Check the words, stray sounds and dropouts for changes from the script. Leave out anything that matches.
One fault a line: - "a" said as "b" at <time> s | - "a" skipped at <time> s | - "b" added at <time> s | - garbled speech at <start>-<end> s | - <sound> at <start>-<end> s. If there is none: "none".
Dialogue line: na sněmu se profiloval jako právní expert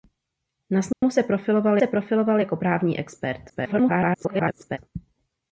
- dropout at 0.9-1.0 s
- "se profiloval" added at 1.8 s
- garbled speech at 3.5-4.8 s